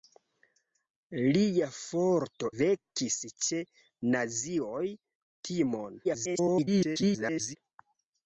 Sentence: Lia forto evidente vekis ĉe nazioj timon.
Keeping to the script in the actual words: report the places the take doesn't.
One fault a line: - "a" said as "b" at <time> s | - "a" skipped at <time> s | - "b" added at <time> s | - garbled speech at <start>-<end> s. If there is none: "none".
- "evidente" skipped at 2.5 s
- garbled speech at 6.0-7.6 s